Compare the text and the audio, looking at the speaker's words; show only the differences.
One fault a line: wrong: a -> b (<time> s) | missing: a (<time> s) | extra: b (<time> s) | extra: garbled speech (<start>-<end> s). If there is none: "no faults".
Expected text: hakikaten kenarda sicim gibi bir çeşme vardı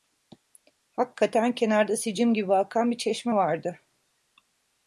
extra: akan (2.5 s)